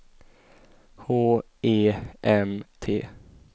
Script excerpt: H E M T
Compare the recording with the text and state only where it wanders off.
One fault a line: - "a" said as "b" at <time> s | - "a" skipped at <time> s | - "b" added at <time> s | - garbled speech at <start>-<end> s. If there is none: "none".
none